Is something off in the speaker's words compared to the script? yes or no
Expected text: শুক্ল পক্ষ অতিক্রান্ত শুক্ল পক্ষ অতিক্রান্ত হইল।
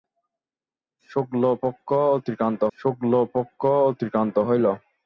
no